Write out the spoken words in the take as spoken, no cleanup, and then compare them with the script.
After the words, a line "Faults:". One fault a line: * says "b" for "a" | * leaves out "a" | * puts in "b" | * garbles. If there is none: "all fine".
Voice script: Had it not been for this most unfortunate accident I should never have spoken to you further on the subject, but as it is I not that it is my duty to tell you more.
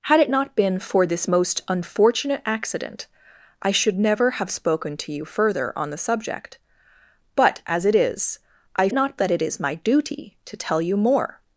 Had it not been for this most unfortunate accident I should never have spoken to you further on the subject, but as it is I not that it is my duty to tell you more.
Faults:
all fine